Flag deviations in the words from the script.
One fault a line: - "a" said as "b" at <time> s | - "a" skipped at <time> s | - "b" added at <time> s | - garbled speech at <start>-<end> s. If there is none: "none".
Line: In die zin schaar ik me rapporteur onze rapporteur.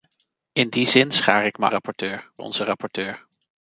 none